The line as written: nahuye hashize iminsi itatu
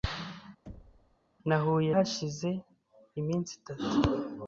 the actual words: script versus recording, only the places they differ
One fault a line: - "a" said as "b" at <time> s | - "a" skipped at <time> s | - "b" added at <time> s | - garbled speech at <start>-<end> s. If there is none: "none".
none